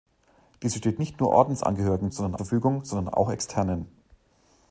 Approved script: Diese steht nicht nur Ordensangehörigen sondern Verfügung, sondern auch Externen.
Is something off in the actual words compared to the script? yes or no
no